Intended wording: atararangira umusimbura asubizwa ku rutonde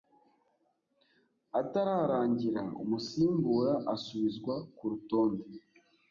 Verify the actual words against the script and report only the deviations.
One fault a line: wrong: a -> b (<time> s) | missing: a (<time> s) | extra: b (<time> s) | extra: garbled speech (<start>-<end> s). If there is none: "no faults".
no faults